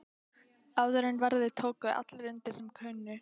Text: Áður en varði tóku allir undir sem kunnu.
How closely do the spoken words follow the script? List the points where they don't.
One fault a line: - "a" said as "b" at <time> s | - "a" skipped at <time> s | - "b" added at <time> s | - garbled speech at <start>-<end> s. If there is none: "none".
none